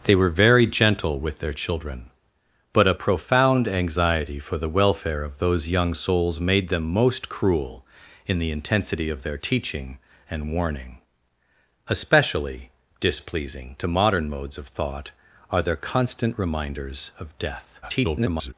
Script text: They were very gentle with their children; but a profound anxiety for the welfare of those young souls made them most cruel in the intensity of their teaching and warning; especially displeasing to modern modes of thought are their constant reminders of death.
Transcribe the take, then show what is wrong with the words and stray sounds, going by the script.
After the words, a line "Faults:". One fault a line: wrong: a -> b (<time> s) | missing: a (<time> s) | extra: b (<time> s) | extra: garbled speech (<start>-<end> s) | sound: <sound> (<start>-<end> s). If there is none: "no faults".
They were very gentle with their children; but a profound anxiety for the welfare of those young souls made them most cruel in the intensity of their teaching and warning; especially displeasing to modern modes of thought are their constant reminders of death. [garbled]
Faults:
extra: garbled speech (17.8-18.5 s)